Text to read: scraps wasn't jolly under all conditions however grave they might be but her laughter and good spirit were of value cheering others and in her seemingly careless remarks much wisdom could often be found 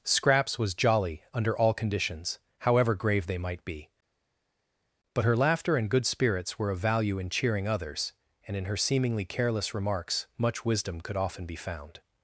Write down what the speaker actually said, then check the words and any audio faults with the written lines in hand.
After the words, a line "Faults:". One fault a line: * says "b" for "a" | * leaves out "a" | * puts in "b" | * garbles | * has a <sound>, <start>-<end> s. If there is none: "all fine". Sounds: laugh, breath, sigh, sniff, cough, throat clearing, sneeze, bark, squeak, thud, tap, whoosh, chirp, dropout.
scraps was jolly under all conditions however grave they might be but her laughter and good spirits were of value in cheering others and in her seemingly careless remarks much wisdom could often be found
Faults:
* says "was" for "wasn't"
* says "spirits" for "spirit"
* puts in "in"